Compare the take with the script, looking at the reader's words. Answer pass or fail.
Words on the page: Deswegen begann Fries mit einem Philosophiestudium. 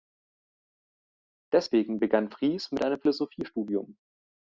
pass